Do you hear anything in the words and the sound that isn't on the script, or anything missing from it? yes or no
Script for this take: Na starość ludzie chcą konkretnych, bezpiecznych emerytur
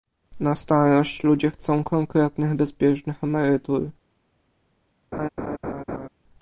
yes